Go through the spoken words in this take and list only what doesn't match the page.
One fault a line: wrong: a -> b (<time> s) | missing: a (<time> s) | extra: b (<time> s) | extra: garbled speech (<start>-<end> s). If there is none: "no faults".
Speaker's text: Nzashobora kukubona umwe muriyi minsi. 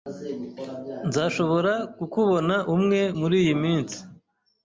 no faults